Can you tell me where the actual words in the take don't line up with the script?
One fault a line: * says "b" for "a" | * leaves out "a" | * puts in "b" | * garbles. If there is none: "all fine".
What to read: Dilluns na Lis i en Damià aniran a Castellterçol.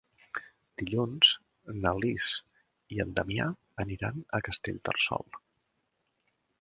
all fine